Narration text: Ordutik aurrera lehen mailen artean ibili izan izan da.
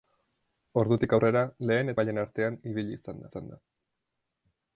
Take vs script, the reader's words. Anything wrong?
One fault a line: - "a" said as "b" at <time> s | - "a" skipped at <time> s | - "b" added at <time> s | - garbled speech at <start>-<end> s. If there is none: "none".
none